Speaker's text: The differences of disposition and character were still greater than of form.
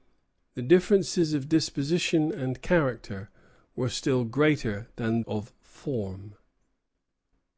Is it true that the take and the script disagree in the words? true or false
false